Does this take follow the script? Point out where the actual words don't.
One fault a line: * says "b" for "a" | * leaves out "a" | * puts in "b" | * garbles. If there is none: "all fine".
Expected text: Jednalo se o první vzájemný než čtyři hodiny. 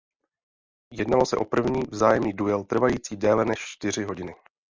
* puts in "duel trvající déle"